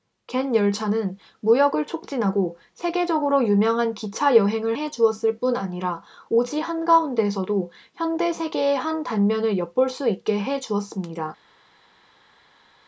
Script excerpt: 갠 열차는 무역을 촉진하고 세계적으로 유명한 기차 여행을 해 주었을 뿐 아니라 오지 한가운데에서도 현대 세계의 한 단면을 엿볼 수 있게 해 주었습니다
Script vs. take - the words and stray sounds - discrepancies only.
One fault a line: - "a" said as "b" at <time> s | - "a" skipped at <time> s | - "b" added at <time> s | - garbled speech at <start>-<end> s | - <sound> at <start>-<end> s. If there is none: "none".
none